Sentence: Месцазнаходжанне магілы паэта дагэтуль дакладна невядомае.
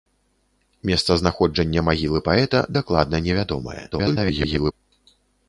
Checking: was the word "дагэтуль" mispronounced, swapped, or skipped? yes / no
yes